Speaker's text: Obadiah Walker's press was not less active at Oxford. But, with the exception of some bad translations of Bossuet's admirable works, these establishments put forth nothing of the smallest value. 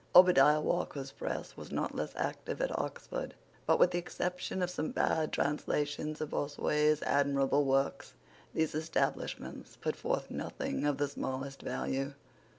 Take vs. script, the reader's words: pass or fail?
pass